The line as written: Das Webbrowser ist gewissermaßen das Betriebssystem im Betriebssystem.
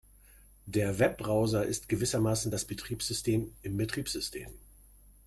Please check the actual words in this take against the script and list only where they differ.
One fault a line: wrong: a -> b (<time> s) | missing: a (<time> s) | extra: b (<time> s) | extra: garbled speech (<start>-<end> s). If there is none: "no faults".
wrong: Das -> Der (0.7 s)